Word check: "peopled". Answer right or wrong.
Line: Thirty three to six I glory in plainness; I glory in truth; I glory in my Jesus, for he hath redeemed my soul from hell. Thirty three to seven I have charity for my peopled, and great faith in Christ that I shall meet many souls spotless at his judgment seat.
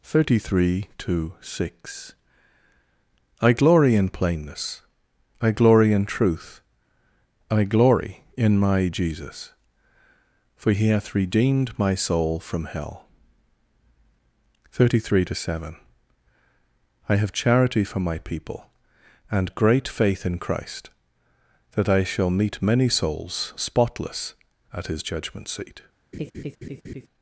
wrong